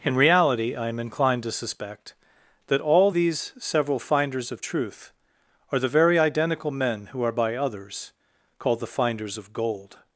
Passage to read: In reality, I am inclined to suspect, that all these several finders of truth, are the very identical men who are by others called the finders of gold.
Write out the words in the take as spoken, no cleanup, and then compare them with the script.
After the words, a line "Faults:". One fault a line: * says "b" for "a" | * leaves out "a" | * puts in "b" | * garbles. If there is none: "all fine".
In reality, I am inclined to suspect, that all these several finders of truth, are the very identical men who are by others called the finders of gold.
Faults:
all fine